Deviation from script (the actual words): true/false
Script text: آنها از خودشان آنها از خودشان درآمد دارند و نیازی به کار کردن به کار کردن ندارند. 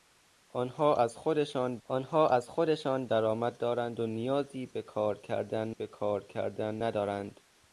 false